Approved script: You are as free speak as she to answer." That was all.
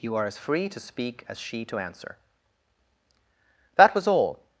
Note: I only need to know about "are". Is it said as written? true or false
true